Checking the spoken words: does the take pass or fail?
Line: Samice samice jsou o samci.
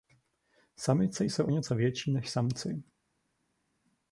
fail